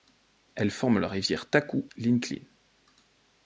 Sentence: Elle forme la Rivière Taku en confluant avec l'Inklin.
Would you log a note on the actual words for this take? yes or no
yes